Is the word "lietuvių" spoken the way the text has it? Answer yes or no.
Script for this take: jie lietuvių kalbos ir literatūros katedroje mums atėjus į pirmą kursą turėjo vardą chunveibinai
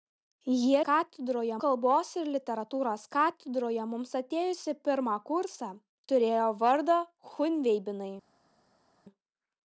no